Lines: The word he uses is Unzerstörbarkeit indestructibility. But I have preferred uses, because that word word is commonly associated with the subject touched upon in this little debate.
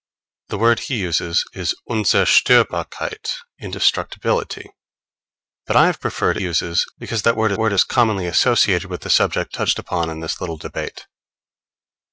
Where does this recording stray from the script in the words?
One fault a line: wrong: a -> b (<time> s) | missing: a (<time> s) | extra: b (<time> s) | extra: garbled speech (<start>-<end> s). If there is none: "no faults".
no faults